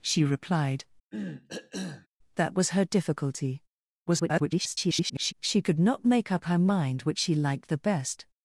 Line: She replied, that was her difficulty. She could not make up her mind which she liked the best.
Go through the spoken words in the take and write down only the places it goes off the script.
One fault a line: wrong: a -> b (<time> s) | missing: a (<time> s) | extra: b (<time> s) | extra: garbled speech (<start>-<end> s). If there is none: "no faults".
extra: garbled speech (4.1-5.3 s)